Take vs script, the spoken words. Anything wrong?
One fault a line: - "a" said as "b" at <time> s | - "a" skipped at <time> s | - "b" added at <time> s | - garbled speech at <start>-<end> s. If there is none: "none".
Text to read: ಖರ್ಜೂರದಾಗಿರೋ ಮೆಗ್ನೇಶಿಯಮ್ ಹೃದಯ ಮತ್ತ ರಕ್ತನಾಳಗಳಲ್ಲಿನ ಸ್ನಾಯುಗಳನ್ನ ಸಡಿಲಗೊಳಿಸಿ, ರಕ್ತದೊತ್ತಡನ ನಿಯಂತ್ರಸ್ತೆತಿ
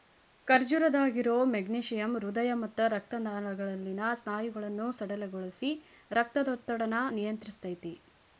none